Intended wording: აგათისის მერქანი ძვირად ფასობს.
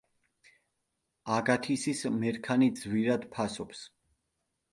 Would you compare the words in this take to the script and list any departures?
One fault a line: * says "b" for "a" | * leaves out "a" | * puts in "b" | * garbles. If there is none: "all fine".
all fine